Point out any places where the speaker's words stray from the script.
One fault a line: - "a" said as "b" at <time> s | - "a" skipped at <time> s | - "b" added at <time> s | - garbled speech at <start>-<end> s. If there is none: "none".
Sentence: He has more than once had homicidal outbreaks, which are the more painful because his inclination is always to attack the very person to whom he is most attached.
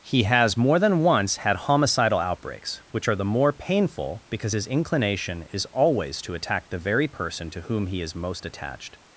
none